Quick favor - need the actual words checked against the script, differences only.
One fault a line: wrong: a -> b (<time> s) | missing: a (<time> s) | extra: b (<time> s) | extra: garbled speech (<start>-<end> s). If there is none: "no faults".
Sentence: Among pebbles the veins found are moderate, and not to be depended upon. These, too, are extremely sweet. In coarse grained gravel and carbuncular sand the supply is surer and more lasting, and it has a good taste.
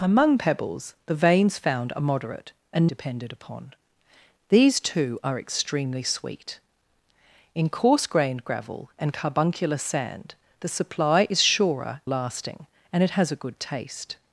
missing: not to be (2.9 s)
missing: and more (12.0 s)